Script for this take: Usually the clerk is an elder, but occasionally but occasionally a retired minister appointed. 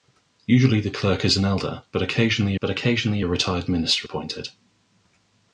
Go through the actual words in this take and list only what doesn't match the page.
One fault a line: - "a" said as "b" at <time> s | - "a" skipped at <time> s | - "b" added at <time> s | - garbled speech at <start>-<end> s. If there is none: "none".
none